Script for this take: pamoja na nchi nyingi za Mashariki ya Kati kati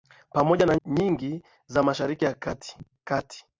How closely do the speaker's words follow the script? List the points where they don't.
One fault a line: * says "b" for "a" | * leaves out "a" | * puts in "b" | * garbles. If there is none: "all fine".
* leaves out "nchi"